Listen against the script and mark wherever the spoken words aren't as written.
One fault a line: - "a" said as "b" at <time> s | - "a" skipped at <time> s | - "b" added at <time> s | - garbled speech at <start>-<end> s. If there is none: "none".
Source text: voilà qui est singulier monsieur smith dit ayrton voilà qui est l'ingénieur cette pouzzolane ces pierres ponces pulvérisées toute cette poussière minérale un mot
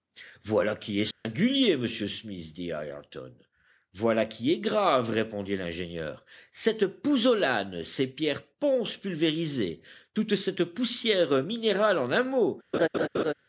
- "grave répondit" added at 4.6 s
- "en" added at 12.0 s